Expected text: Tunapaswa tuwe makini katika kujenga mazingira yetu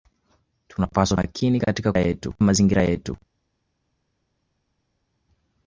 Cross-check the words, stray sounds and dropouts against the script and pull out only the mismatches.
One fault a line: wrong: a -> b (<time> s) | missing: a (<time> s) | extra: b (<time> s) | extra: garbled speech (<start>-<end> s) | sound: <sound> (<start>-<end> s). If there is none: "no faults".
missing: tuwe (1.2 s)
wrong: kujenga -> yetu (2.0 s)